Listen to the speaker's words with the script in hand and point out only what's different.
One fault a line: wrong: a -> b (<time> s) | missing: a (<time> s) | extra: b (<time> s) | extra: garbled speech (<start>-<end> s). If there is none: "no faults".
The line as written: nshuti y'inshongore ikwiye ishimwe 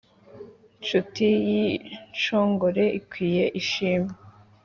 no faults